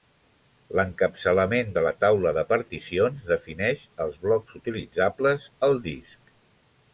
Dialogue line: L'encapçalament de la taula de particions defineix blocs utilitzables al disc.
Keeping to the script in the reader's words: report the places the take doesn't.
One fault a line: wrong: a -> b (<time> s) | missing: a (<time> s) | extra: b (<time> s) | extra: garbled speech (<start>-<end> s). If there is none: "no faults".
extra: els (4.1 s)